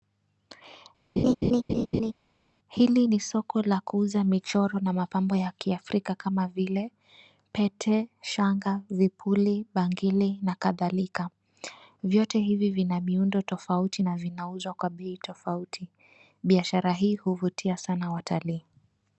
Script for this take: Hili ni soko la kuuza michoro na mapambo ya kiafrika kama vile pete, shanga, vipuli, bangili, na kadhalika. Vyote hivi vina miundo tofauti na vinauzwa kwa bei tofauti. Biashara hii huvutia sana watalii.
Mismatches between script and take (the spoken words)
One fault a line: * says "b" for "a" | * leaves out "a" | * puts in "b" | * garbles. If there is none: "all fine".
all fine